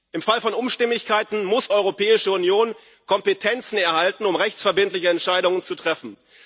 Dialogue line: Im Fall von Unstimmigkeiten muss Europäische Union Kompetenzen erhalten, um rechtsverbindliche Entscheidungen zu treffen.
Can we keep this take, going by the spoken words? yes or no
yes